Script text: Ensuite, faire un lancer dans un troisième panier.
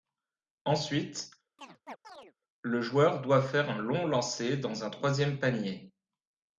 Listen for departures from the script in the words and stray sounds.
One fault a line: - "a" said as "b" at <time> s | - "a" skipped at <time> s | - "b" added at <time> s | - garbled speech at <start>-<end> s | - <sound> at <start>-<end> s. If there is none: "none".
- chirp at 1.6-2.3 s
- "le joueur doit" added at 2.6 s
- "long" added at 3.8 s